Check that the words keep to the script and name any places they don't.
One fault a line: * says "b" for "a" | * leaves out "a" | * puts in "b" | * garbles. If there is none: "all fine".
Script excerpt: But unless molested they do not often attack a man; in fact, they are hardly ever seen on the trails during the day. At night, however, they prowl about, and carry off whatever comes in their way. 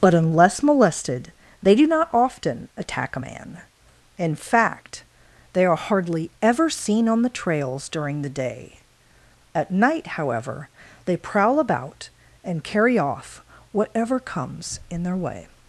all fine